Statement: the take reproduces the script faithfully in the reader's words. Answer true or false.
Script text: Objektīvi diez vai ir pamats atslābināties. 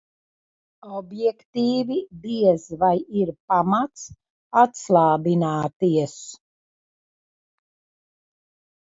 true